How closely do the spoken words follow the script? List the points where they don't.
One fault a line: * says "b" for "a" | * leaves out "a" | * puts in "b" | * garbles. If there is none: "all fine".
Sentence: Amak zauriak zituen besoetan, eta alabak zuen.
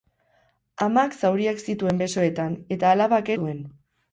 all fine